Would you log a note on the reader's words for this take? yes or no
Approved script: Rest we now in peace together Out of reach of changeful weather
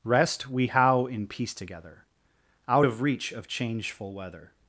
yes